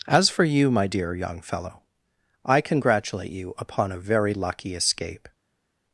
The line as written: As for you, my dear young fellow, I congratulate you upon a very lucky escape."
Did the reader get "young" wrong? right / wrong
right